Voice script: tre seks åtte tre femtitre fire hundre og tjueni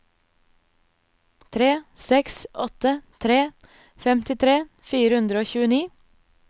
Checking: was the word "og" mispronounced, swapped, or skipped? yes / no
no